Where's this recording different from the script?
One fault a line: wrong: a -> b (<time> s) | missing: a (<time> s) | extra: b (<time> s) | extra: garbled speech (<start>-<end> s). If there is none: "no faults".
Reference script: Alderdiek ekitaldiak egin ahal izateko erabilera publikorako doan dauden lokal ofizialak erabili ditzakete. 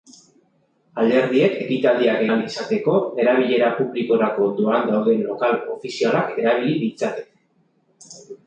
missing: egin (2.2 s)